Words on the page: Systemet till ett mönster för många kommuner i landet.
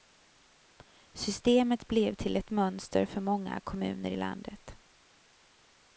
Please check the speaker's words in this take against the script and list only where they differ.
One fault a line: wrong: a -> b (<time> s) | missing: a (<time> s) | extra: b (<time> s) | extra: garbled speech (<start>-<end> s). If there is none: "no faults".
extra: blev (1.9 s)